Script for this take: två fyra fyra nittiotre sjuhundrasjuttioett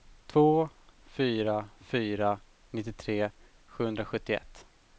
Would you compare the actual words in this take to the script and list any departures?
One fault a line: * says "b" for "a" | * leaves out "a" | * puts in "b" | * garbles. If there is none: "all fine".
all fine